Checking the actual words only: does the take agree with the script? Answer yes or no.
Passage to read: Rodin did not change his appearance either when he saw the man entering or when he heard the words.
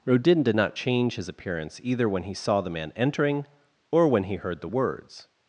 yes